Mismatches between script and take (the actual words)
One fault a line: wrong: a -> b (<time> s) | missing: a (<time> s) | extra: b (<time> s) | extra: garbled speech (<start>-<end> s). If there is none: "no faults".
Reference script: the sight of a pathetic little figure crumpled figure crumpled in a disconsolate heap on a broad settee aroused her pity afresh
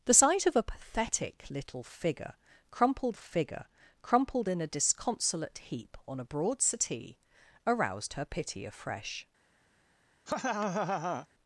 no faults